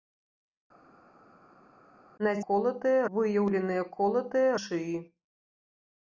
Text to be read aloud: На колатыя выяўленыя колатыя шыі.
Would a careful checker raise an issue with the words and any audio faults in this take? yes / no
no